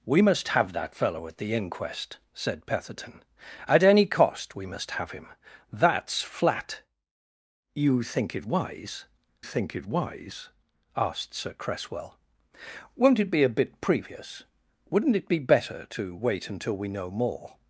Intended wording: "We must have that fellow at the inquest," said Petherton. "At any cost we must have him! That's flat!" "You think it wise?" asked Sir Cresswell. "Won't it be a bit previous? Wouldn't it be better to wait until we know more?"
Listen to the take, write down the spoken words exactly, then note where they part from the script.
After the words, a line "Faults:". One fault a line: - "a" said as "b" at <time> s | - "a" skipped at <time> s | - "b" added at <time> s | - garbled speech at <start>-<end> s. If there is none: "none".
"We must have that fellow at the inquest," said Petherton. "At any cost we must have him! That's flat!" "You think it wise think it wise?" asked Sir Cresswell. "Won't it be a bit previous? Wouldn't it be better to wait until we know more?"
Faults:
- "think it wise" added at 9.4 s